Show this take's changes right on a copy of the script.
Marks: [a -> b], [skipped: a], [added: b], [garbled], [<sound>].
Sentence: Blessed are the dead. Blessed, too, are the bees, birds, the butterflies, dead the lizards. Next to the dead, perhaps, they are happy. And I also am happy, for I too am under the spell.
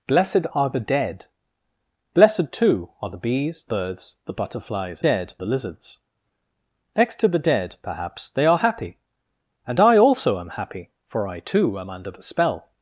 Blessed are the dead. Blessed, too, are the bees, birds, the butterflies, dead the lizards. Next to the dead, perhaps, they are happy. And I also am happy, for I too am under the spell.